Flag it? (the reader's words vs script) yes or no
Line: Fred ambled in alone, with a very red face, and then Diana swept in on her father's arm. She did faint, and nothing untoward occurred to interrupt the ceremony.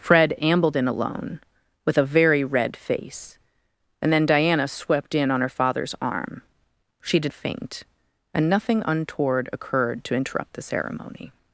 no